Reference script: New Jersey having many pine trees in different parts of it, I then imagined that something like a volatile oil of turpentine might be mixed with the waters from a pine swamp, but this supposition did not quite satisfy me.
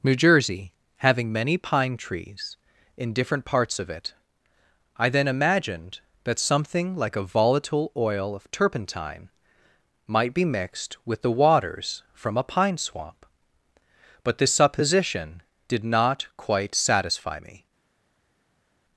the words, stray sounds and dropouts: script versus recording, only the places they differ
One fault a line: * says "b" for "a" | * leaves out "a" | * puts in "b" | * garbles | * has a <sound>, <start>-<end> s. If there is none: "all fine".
all fine